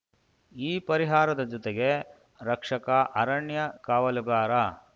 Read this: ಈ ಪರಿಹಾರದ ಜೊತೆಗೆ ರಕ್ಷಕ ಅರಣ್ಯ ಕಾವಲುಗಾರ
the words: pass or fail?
pass